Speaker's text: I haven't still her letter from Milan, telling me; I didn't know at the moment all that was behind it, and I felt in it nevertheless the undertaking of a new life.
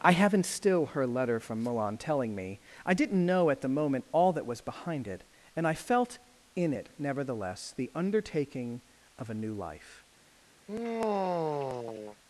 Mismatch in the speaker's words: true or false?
false